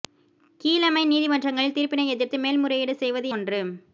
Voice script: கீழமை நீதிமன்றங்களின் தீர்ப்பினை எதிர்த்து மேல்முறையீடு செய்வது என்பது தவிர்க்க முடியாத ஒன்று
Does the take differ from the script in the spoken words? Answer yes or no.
yes